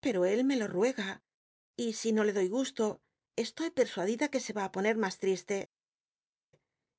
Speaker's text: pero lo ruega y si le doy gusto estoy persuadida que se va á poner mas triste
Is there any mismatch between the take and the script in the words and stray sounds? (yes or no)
yes